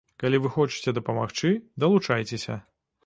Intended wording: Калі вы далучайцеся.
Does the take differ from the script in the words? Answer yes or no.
yes